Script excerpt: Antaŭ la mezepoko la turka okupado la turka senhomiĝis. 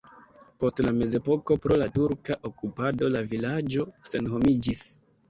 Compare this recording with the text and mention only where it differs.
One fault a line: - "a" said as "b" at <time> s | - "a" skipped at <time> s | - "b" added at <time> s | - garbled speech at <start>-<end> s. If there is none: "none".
- "Antaŭ" said as "Post" at 0.6 s
- "pro" added at 1.6 s
- "turka" said as "vilaĝo" at 3.3 s